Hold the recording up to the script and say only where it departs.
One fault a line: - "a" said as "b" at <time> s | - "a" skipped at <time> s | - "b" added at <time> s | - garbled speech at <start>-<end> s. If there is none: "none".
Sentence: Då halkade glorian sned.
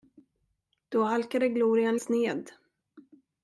none